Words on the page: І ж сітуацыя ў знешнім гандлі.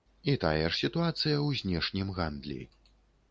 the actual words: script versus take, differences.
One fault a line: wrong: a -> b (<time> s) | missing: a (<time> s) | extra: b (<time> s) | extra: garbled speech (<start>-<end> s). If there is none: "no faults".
extra: тая (0.4 s)